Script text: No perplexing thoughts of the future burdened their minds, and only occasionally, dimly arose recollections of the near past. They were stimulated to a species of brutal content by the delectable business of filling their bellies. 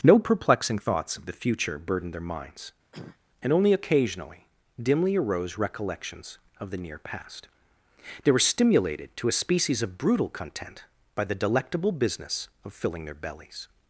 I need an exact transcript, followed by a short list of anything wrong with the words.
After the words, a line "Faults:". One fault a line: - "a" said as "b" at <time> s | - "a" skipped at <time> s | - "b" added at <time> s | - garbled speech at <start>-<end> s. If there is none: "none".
No perplexing thoughts of the future burdened their minds, and only occasionally, dimly arose recollections of the near past. They were stimulated to a species of brutal content by the delectable business of filling their bellies.
Faults:
none